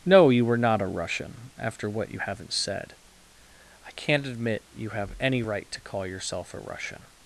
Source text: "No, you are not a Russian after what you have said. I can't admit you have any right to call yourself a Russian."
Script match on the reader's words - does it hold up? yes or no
no